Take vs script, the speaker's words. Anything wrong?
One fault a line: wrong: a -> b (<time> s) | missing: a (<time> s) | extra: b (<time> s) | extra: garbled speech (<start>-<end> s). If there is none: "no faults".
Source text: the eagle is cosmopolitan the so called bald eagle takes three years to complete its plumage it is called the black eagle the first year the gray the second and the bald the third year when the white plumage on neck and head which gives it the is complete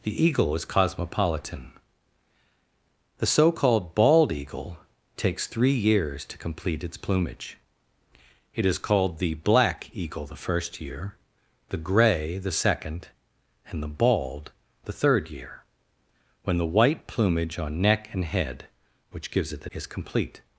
no faults